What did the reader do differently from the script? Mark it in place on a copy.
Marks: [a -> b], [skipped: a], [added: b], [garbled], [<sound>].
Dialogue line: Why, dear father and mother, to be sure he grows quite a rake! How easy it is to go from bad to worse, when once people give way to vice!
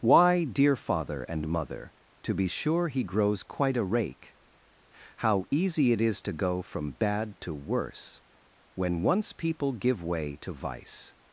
Why, dear father and mother, to be sure he grows quite a rake! How easy it is to go from bad to worse, when once people give way to vice!